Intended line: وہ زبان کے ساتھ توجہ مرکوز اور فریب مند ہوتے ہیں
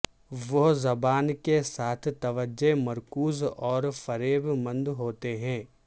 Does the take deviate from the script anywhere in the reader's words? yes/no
no